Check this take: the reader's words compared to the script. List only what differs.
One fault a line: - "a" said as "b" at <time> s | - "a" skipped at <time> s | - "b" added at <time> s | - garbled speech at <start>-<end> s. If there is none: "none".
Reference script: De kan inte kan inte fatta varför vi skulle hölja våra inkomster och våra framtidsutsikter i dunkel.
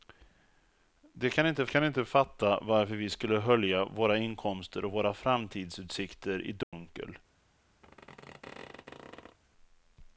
none